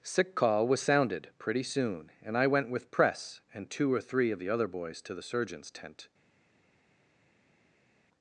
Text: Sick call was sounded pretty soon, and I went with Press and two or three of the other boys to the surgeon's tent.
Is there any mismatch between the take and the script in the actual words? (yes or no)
no